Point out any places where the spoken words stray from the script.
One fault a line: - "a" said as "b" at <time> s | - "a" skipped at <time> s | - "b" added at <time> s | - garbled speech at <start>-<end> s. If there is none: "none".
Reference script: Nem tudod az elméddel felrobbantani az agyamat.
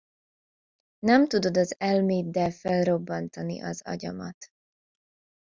none